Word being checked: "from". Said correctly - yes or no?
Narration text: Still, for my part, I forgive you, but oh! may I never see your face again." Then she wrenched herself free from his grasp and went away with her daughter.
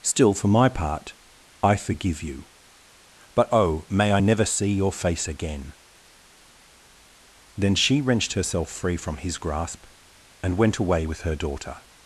yes